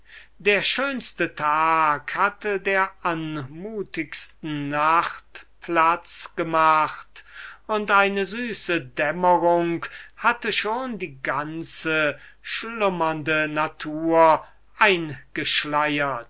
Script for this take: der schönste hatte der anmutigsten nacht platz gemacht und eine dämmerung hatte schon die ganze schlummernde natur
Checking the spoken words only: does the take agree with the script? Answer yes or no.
no